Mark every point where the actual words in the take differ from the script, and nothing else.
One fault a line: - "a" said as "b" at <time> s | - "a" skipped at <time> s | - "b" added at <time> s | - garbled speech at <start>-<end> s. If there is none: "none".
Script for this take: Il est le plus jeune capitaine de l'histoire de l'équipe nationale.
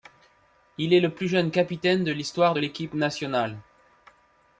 none